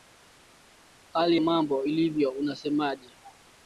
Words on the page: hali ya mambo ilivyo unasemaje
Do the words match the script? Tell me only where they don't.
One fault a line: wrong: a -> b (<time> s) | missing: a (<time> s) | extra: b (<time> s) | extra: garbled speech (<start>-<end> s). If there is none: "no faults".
missing: ya (1.4 s)